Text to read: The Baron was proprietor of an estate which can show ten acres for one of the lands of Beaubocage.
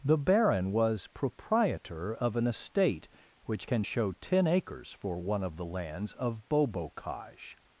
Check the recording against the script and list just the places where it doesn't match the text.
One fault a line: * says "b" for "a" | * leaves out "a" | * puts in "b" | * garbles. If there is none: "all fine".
all fine